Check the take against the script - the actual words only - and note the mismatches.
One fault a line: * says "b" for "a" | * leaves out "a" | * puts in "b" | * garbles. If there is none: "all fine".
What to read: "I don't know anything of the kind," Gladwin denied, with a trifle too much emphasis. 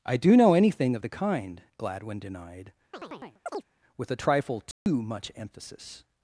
* says "do" for "don't"